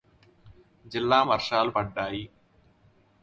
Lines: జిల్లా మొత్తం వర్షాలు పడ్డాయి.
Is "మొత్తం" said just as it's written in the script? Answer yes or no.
no